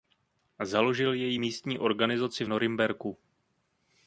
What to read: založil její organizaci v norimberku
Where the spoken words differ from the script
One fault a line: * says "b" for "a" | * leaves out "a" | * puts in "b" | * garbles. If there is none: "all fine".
* puts in "místní"